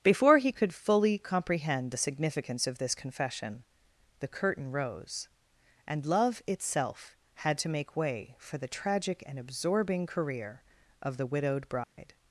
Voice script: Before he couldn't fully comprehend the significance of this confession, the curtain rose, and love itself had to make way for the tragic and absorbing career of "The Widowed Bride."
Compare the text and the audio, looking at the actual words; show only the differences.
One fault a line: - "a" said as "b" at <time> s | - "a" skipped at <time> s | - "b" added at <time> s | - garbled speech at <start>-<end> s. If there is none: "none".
- "couldn't" said as "could" at 0.5 s